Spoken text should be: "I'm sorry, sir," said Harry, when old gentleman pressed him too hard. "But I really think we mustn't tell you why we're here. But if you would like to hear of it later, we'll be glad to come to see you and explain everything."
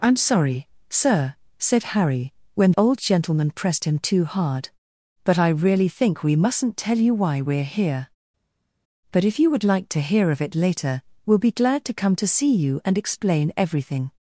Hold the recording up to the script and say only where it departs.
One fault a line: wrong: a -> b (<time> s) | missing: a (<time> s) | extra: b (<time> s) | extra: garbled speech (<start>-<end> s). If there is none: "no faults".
no faults